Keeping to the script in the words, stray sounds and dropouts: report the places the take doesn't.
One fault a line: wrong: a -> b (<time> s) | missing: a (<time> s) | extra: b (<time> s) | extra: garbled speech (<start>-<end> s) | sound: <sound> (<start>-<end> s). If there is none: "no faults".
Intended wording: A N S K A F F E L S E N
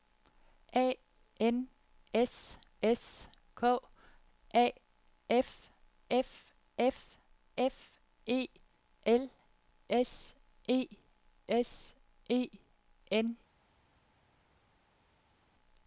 extra: S (2.8 s)
extra: F F (6.8 s)
extra: S E (11.5 s)